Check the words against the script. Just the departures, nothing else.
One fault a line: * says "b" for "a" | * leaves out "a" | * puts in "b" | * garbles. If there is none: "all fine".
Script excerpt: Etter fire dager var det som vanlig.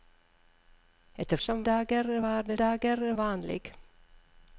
* says "som" for "fire"
* says "dager" for "som"